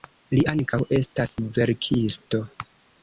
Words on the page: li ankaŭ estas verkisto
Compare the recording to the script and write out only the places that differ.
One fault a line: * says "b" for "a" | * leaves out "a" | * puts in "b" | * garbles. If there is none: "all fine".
all fine